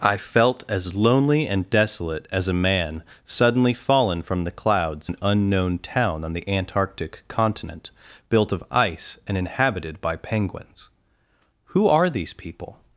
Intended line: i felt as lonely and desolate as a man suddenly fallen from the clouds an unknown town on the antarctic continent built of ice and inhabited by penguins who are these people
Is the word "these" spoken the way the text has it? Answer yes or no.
yes